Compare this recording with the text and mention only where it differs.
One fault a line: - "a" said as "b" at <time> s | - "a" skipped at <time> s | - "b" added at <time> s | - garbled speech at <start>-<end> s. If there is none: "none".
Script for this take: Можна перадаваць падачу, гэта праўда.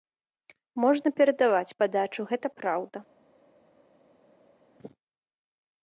none